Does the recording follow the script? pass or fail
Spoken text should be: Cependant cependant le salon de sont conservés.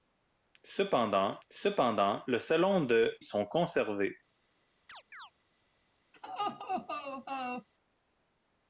pass